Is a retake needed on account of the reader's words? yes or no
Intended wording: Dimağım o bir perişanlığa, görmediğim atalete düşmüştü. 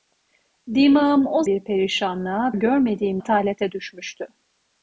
no